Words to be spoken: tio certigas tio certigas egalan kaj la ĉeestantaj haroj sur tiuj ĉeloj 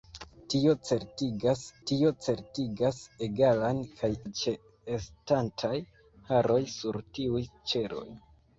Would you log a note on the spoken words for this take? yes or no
no